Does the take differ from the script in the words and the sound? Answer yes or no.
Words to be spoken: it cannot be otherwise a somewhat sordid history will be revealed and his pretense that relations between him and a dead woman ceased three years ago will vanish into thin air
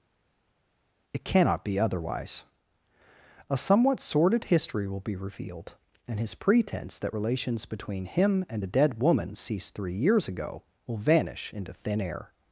no